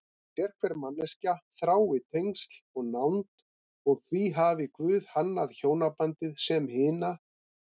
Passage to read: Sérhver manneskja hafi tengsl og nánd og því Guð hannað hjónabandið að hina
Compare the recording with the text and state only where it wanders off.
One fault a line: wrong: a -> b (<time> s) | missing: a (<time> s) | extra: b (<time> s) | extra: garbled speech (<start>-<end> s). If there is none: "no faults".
wrong: hafi -> þrái (1.6 s)
extra: hafi (4.4 s)
wrong: að -> sem (6.5 s)